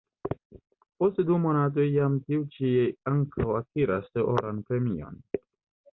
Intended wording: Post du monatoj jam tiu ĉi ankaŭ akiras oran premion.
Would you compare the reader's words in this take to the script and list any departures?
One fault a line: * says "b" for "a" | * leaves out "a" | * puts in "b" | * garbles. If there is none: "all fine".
all fine